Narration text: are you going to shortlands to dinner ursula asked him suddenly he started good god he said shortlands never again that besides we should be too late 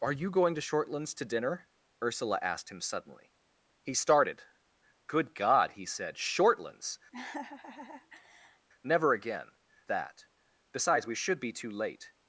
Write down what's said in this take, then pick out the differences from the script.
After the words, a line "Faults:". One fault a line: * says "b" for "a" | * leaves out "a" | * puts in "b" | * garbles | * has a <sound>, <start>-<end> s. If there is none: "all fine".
are you going to shortlands to dinner ursula asked him suddenly he started good god he said shortlands never again that besides we should be too late
Faults:
* has a laugh, 7.1-8.7 s